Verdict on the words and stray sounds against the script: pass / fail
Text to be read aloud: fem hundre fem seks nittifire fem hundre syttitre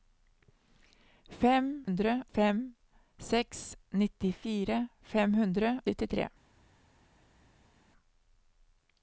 pass